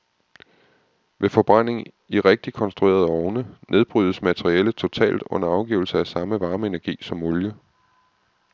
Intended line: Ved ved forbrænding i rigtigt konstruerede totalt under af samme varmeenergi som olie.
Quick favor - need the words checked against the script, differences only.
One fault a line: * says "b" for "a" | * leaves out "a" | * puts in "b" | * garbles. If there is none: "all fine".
* leaves out "ved"
* puts in "ovne nedbrydes materialet"
* puts in "afgivelse"